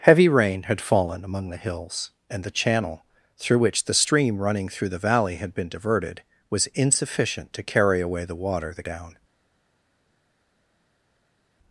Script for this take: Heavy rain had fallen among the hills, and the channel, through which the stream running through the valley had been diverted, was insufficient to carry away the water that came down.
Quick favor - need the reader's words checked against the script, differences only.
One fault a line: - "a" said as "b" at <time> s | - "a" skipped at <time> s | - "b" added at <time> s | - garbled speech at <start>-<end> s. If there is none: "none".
- "came" skipped at 8.9 s